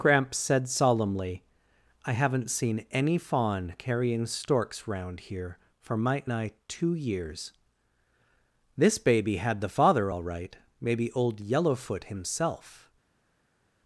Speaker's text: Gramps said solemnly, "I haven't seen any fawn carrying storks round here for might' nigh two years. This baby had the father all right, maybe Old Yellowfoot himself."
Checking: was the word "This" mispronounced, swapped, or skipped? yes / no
no